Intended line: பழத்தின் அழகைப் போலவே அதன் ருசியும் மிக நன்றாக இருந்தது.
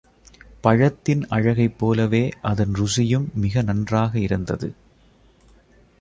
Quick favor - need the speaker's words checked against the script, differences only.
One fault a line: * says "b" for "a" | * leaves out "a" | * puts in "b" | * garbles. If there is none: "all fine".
all fine